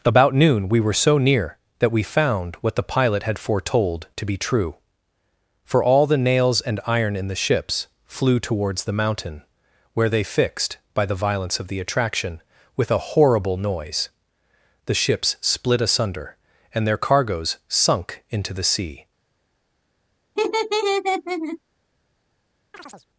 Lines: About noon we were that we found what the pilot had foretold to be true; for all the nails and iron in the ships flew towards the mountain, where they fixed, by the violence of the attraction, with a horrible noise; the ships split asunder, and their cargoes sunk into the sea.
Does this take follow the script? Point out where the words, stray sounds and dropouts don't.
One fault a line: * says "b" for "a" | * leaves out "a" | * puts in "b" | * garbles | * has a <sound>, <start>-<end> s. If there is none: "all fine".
* puts in "so near"
* has a laugh, 20.4-21.6 s
* has a chirp, 22.7-23.1 s